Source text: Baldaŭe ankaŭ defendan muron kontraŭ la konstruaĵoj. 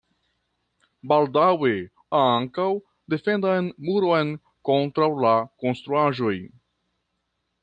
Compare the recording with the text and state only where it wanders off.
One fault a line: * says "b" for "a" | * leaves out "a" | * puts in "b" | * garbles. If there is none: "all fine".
all fine